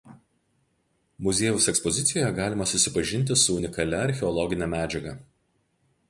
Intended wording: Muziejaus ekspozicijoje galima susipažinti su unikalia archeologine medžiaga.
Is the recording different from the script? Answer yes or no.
no